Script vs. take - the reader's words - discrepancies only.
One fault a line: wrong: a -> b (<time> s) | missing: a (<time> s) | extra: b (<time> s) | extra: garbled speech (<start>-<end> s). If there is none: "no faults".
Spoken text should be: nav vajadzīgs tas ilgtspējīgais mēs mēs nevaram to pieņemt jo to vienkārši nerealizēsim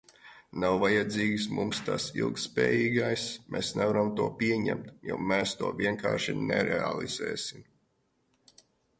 extra: mums (1.6 s)
missing: mēs (3.7 s)
extra: mēs (5.3 s)